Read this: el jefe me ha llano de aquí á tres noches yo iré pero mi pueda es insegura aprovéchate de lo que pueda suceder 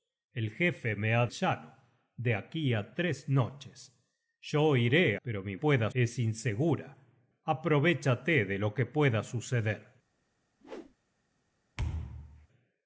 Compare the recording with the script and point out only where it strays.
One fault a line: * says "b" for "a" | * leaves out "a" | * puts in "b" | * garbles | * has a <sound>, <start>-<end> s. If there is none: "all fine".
* has a whoosh, 10.6-11.0 s
* has a thud, 11.8-12.5 s